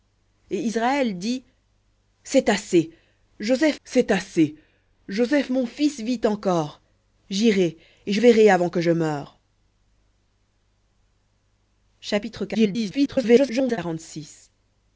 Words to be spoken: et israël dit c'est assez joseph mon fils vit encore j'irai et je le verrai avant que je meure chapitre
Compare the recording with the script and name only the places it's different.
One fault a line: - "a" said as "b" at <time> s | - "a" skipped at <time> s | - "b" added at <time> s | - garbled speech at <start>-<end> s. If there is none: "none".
- "c'est assez joseph" added at 3.8 s
- "le" skipped at 8.2 s
- garbled speech at 12.5-13.8 s